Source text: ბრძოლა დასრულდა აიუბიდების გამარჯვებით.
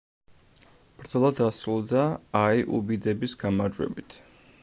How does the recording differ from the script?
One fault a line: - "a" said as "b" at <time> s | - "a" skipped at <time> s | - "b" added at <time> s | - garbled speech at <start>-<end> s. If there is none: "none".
none